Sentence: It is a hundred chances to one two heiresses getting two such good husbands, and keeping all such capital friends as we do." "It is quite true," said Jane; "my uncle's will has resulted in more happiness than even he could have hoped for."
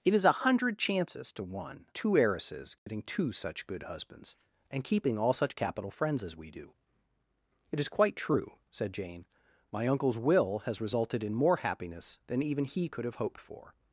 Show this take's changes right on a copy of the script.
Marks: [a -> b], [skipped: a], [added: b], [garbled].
It is a hundred chances to one two heiresses getting two such good husbands, and keeping all such capital friends as we do." "It is quite true," said Jane; "my uncle's will has resulted in more happiness than even he could have hoped for."